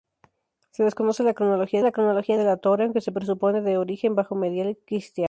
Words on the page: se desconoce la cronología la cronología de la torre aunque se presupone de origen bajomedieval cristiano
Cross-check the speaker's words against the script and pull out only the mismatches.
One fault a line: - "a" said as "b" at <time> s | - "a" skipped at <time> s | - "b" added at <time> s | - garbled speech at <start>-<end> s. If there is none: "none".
none